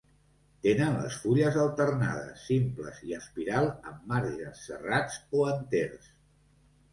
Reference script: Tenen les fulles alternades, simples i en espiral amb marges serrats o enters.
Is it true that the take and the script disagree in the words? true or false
true